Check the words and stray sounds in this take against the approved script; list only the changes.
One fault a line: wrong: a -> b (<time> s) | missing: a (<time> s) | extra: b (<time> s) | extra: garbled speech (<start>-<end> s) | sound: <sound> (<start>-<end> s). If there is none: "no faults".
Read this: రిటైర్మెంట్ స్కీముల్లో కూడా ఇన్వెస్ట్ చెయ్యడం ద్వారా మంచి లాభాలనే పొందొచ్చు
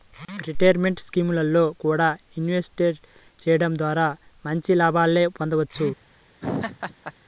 sound: laugh (6.4-7.1 s)